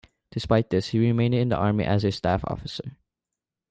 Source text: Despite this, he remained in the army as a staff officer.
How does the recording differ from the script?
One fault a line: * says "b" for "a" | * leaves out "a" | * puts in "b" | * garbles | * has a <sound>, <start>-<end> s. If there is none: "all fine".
all fine